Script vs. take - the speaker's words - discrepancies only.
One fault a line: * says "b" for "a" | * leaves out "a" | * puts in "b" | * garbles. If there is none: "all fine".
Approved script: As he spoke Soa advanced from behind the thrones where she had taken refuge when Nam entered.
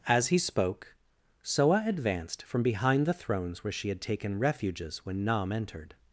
* says "refuges" for "refuge"